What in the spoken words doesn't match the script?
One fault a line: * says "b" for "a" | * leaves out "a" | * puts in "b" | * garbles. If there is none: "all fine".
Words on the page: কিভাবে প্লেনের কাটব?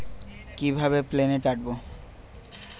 all fine